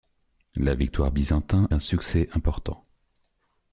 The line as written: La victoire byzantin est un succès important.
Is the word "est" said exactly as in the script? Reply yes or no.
no